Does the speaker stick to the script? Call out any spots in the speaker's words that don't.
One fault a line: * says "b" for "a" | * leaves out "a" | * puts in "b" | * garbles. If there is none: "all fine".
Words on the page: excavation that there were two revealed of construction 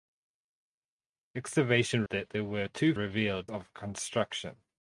all fine